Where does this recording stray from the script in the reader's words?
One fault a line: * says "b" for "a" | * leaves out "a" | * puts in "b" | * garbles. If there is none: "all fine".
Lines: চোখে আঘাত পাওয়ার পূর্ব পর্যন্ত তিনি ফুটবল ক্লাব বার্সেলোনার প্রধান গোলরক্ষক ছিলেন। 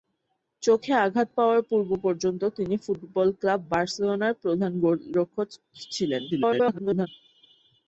* garbles